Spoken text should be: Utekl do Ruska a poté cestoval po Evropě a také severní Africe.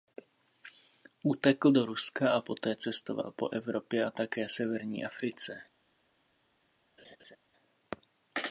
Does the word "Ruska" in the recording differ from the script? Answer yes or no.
no